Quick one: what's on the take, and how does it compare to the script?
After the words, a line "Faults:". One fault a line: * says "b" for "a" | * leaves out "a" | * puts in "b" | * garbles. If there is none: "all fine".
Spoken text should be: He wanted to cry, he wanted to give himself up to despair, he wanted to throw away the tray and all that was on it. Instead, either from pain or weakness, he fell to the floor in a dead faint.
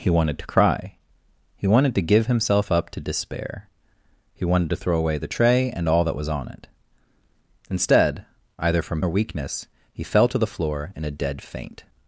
He wanted to cry, he wanted to give himself up to despair, he wanted to throw away the tray and all that was on it. Instead, either from or weakness, he fell to the floor in a dead faint.
Faults:
* leaves out "pain"